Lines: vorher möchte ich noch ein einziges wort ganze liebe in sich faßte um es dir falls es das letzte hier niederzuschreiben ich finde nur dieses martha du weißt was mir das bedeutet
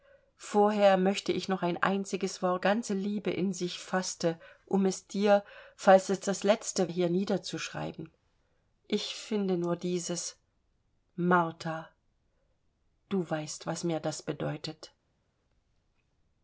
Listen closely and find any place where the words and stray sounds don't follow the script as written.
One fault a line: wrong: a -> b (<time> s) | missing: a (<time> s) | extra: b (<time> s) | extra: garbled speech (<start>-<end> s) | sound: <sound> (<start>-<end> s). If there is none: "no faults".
no faults